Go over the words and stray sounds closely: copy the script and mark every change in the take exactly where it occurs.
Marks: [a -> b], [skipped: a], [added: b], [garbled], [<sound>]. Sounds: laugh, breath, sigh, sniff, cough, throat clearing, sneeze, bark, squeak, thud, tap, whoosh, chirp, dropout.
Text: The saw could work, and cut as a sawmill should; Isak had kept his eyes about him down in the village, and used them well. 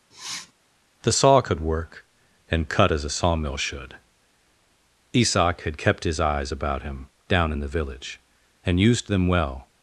[sniff] The saw could work, and cut as a sawmill should; Isak had kept his eyes about him down in the village, and used them well.